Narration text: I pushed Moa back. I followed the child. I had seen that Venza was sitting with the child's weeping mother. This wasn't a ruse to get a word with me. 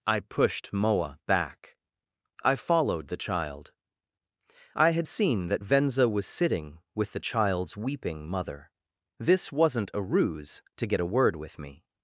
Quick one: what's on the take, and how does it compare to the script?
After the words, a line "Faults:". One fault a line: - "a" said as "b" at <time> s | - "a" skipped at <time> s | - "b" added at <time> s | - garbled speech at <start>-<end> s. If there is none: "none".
I pushed Moa back. I followed the child. I had seen that Venza was sitting with the child's weeping mother. This wasn't a ruse to get a word with me.
Faults:
none